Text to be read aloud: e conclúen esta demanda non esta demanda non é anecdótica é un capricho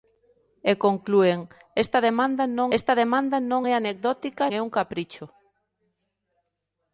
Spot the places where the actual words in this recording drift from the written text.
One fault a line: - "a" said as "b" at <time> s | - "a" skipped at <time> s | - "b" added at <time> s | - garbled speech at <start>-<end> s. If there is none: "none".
none